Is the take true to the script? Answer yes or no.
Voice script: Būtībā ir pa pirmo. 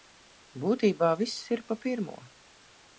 no